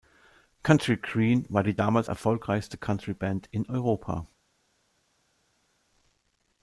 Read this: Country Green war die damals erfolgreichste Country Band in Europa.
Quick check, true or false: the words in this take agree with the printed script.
true